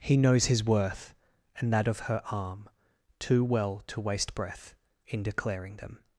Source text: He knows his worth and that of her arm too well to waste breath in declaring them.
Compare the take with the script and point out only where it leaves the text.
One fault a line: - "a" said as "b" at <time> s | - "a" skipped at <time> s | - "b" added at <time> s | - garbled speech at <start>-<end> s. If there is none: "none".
none